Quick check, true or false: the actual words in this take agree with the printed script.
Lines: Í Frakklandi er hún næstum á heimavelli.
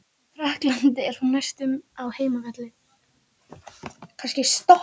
true